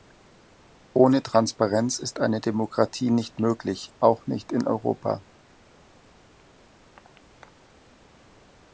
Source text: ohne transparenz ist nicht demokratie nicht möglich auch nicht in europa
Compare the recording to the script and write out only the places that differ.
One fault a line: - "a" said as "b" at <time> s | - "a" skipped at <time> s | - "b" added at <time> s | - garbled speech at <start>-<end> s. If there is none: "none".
- "nicht" said as "eine" at 2.2 s